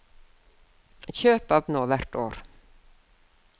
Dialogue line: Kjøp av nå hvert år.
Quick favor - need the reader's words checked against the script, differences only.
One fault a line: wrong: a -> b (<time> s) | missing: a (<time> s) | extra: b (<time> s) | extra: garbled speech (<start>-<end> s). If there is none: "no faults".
no faults